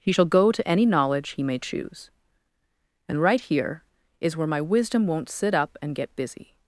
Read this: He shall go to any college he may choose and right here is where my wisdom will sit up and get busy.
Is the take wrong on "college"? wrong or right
wrong